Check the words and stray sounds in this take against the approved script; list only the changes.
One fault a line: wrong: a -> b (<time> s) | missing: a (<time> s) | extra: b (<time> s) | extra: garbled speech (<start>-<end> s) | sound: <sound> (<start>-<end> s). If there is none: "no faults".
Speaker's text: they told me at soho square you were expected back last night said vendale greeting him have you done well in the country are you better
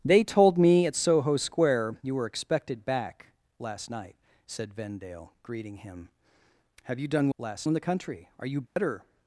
wrong: well -> last (7.4 s)
sound: dropout (8.7-8.8 s)